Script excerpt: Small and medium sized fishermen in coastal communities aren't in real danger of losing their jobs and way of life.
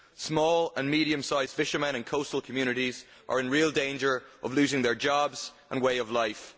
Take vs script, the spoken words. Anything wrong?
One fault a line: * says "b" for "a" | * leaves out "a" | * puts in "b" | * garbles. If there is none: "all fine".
* says "are" for "aren't"